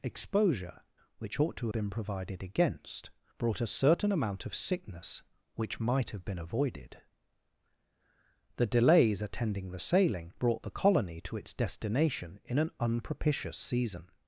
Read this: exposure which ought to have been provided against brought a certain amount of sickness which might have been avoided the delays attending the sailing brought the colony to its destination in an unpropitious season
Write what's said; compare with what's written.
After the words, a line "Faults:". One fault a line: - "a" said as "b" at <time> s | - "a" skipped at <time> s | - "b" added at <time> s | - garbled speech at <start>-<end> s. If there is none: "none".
exposure which ought to been provided against brought a certain amount of sickness which might have been avoided the delays attending the sailing brought the colony to its destination in an unpropitious season
Faults:
- "have" skipped at 1.7 s